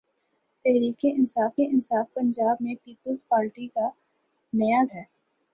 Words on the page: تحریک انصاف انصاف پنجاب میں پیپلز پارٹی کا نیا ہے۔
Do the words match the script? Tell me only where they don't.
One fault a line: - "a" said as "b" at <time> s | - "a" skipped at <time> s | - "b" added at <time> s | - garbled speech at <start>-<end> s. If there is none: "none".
none